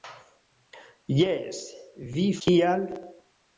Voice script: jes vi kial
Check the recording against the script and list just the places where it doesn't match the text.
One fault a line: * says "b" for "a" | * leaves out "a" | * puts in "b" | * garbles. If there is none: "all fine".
all fine